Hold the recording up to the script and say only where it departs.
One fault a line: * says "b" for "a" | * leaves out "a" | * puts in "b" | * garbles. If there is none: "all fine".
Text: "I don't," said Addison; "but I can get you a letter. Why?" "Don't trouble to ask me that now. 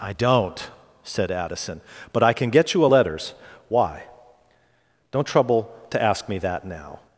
* says "letters" for "letter"